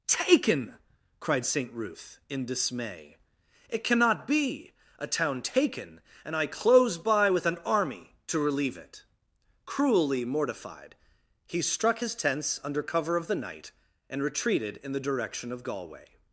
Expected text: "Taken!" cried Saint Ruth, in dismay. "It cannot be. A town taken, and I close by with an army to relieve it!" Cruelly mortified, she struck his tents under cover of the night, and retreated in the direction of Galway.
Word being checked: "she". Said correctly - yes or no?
no